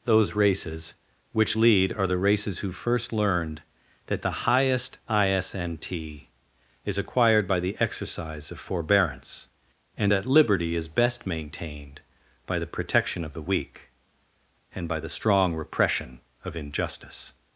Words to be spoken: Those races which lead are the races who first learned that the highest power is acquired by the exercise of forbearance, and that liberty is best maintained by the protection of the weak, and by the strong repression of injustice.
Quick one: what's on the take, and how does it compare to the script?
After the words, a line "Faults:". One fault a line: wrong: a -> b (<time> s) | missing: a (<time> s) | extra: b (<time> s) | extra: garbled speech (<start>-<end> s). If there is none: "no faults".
Those races which lead are the races who first learned that the highest isnt is acquired by the exercise of forbearance, and that liberty is best maintained by the protection of the weak, and by the strong repression of injustice.
Faults:
wrong: power -> isnt (5.1 s)